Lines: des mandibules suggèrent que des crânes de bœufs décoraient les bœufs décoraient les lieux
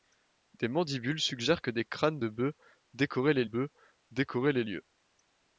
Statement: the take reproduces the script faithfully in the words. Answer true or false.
true